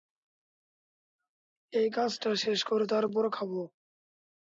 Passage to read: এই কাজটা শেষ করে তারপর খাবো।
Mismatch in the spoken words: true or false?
false